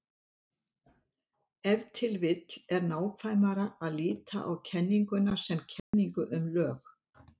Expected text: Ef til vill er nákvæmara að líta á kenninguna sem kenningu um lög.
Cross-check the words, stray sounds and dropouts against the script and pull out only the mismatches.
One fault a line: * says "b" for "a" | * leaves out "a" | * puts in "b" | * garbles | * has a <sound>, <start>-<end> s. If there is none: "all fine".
* has a dropout, 5.8-5.9 s